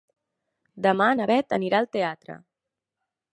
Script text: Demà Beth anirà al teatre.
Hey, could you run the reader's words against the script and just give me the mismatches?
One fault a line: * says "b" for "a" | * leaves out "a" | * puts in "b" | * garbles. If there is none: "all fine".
* puts in "na"